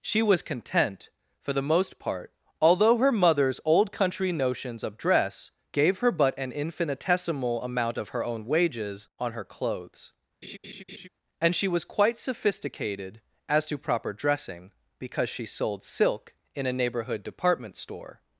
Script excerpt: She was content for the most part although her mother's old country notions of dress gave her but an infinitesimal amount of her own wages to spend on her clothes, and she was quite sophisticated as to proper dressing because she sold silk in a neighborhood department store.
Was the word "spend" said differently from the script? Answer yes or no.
yes